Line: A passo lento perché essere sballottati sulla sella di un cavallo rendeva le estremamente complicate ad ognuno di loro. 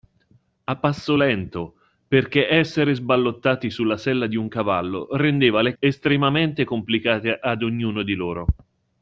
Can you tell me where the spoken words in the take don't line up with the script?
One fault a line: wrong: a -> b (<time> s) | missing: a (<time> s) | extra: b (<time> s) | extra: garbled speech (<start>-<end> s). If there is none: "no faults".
no faults